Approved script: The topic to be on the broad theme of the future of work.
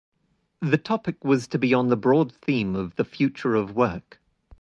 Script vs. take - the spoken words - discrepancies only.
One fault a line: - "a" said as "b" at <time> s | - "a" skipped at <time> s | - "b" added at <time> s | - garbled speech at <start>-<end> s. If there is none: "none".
- "was" added at 1.2 s